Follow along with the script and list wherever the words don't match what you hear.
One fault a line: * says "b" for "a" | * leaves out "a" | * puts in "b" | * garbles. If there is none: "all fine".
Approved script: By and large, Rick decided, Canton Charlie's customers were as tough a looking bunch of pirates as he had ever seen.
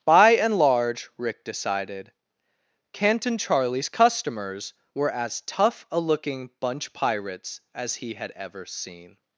* leaves out "of"